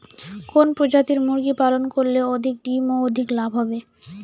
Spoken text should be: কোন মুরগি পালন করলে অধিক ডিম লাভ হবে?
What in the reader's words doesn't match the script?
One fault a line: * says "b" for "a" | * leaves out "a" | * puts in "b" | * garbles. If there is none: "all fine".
* puts in "প্রজাতির"
* puts in "ও অধিক"